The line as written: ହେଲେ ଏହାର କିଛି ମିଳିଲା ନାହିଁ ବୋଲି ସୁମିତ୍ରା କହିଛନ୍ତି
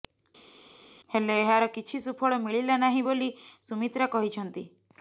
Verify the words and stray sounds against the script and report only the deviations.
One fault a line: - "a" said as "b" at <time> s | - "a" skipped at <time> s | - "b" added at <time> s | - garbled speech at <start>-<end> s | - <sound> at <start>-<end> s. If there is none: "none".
- "ସୁଫଳ" added at 2.1 s